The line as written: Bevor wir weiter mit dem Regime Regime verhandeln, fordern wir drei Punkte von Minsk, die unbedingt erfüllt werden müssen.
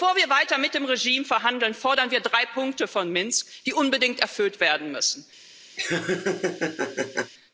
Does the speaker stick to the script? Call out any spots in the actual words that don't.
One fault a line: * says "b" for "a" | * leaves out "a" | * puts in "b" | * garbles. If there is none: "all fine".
* leaves out "Regime"